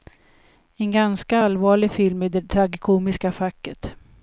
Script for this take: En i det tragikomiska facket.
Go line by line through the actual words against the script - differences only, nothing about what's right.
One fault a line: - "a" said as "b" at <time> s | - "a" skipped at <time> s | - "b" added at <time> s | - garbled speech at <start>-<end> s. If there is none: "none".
- "ganska allvarlig film" added at 0.9 s